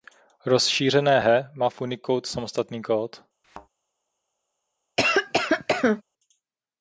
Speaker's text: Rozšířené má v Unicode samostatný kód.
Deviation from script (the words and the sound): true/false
true